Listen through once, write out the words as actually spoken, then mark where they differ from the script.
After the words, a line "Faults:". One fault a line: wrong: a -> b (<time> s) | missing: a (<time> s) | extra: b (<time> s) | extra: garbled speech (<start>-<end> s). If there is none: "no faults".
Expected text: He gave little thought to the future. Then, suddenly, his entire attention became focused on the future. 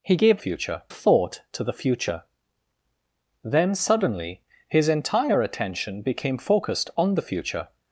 He gave future thought to the future. Then, suddenly, his entire attention became focused on the future.
Faults:
wrong: little -> future (0.4 s)